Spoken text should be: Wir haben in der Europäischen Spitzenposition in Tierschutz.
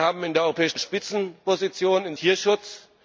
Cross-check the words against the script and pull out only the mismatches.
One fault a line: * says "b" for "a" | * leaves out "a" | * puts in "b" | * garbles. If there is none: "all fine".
all fine